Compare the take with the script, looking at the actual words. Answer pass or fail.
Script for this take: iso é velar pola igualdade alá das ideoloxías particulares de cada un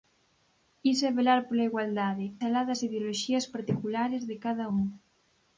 pass